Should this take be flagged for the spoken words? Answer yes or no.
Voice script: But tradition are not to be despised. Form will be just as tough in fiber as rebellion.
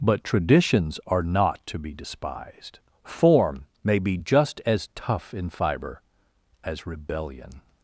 yes